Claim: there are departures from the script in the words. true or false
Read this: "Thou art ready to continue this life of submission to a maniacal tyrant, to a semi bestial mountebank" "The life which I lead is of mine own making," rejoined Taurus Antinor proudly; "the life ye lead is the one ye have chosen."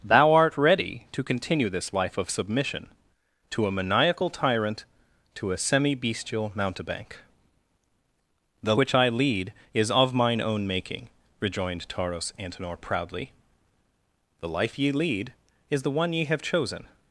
true